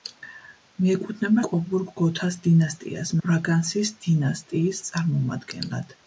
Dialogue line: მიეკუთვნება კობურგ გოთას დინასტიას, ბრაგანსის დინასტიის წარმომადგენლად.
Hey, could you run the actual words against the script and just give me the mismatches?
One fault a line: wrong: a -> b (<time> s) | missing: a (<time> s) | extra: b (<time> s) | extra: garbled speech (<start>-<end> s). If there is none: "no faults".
no faults